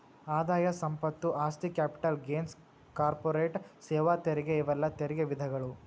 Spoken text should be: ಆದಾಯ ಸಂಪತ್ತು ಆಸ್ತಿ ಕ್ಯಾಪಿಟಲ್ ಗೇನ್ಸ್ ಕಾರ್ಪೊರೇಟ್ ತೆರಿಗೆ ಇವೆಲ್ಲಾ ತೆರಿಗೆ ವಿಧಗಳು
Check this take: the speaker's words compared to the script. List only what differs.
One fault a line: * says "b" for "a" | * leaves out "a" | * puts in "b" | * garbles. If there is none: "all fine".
* puts in "ಸೇವಾ"